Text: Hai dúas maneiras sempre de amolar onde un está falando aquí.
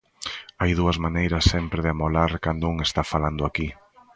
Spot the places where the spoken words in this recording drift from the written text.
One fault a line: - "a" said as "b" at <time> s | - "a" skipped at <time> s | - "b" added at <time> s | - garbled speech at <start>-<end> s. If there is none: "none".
- "onde" said as "cando" at 2.5 s